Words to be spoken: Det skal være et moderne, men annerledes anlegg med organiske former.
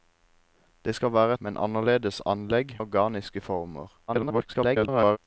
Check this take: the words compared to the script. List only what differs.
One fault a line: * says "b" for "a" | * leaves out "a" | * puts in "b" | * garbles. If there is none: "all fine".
* leaves out "et moderne"
* leaves out "med"
* garbles